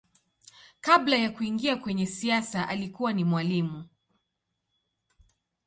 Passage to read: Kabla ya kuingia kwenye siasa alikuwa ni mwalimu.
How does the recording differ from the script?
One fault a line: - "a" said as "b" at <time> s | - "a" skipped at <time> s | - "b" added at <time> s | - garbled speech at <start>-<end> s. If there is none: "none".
none